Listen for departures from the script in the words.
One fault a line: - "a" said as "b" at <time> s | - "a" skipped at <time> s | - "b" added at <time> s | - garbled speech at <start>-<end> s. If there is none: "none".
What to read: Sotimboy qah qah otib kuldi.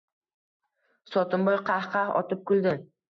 none